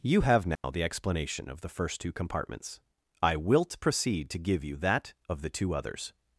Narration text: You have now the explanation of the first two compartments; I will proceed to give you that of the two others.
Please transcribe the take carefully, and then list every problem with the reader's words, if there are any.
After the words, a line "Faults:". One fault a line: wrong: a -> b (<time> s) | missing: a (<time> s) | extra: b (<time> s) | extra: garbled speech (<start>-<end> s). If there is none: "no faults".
You have now the explanation of the first two compartments; I wilt proceed to give you that of the two others.
Faults:
wrong: will -> wilt (3.4 s)